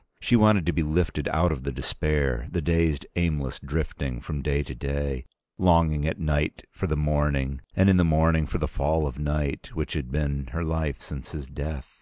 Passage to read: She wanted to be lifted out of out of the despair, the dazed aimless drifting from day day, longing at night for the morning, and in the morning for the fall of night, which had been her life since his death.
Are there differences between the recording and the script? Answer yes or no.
yes